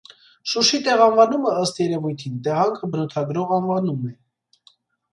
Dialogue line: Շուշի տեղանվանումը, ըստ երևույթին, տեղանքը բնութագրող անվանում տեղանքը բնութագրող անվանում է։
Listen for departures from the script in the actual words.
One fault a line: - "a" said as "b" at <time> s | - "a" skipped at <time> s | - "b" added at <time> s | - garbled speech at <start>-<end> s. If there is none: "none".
- "տեղանքը բնութագրող անվանում" skipped at 4.1 s